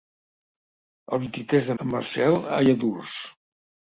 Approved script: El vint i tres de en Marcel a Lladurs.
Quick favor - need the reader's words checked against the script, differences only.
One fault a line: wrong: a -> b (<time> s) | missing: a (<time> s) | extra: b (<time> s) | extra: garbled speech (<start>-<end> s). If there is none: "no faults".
no faults